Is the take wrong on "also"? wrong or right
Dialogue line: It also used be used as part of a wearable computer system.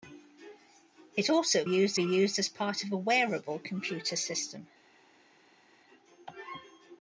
right